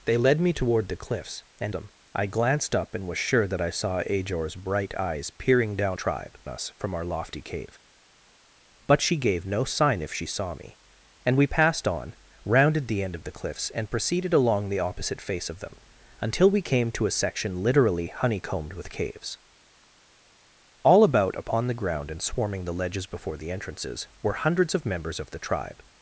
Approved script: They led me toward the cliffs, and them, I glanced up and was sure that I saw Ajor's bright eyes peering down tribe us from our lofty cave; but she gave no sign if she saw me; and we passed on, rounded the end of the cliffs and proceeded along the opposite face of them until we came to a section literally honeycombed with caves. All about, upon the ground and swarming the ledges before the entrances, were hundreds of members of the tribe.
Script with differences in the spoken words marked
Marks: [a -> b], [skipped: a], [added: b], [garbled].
They led me toward the cliffs, and them, I glanced up and was sure that I saw Ajor's bright eyes peering down tribe us from our lofty cave; but she gave no sign if she saw me; and we passed on, rounded the end of the cliffs and proceeded along the opposite face of them until we came to a section literally honeycombed with caves. All about, upon the ground and swarming the ledges before the entrances, were hundreds of members of the tribe.